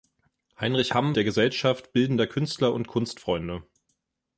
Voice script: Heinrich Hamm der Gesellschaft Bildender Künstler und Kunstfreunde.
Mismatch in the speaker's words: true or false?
false